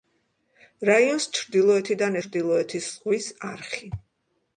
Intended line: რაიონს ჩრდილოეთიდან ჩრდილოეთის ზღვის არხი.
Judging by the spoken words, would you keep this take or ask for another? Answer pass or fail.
pass